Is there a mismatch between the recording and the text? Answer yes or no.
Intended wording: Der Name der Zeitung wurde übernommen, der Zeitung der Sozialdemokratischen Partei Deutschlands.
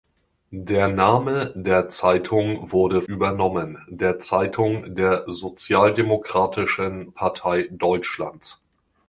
no